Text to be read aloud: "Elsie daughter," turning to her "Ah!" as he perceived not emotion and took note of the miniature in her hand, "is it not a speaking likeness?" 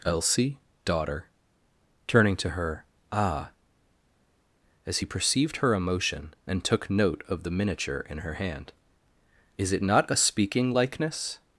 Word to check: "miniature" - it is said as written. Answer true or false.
true